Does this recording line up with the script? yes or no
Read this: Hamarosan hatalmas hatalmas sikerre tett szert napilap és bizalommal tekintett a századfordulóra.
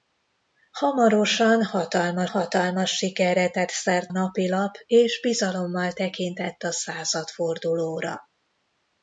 yes